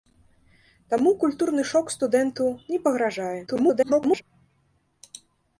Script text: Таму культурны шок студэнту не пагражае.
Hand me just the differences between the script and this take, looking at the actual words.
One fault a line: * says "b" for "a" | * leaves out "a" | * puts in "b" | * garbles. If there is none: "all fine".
* garbles